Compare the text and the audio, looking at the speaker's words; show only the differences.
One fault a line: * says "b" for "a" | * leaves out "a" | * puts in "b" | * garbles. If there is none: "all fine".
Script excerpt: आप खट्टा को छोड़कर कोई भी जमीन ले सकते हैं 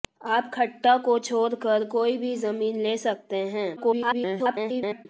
* garbles